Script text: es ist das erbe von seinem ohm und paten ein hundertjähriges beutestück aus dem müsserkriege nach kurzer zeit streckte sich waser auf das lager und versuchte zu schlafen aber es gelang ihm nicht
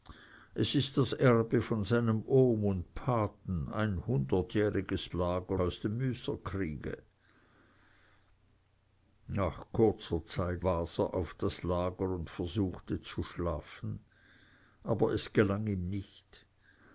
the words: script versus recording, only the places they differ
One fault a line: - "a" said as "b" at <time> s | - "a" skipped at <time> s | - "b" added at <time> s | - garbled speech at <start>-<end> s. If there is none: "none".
- "beutestück" said as "lager" at 5.1 s
- "streckte sich" skipped at 10.6 s